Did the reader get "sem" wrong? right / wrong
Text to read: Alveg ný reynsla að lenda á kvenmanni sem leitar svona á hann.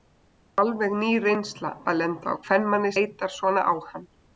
wrong